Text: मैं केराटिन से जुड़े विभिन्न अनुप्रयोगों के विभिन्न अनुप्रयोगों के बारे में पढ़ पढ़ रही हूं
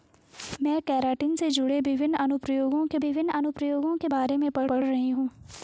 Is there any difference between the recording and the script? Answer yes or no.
no